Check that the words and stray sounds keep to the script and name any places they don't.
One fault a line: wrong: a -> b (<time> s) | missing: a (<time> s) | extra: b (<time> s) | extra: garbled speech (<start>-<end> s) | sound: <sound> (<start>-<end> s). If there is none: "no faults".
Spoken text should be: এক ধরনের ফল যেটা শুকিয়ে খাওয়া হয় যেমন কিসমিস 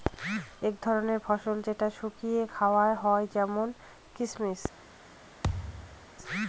sound: thud (5.4-6.1 s)